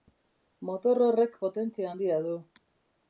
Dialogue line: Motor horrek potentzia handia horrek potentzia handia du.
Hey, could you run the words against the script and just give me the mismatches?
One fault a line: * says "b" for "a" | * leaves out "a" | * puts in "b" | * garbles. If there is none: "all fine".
* leaves out "horrek potentzia handia"